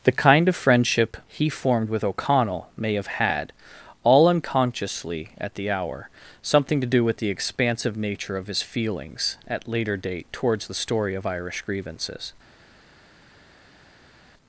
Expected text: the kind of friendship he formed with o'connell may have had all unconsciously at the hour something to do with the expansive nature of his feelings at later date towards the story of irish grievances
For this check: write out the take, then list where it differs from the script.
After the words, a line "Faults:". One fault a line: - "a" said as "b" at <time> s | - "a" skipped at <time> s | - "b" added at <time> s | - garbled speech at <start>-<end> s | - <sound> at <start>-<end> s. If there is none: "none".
the kind of friendship he formed with o'connell may have had all unconsciously at the hour something to do with the expansive nature of his feelings at later date towards the story of irish grievances
Faults:
none